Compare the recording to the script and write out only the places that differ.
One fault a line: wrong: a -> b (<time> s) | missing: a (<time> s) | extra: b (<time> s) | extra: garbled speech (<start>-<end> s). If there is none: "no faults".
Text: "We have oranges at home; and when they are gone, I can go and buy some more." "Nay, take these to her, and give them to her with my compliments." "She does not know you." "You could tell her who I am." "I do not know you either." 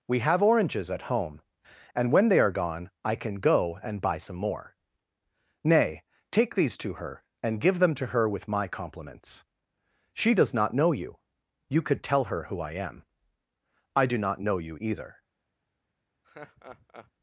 no faults